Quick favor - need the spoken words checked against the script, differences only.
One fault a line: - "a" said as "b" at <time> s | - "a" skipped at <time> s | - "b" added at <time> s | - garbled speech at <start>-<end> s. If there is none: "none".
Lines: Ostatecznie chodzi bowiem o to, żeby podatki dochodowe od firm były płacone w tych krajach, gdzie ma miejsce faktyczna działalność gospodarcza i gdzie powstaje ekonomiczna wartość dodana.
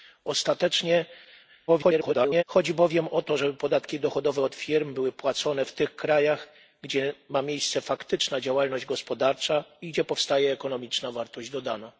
- garbled speech at 1.7-2.4 s